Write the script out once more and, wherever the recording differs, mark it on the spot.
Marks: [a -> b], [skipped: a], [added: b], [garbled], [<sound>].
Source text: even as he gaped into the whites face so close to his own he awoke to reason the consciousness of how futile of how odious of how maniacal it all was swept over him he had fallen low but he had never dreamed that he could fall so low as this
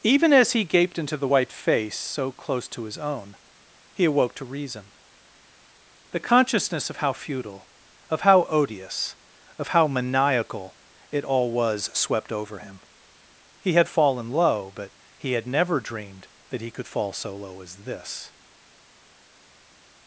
even as he gaped into the [whites -> white] face so close to his own he awoke to reason the consciousness of how futile of how odious of how maniacal it all was swept over him he had fallen low but he had never dreamed that he could fall so low as this